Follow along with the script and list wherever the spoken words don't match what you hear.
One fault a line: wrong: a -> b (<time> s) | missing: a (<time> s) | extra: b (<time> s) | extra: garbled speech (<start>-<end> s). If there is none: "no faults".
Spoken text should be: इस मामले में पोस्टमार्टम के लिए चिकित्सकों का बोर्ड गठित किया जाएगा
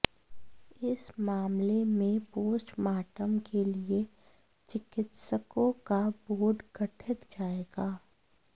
missing: किया (7.2 s)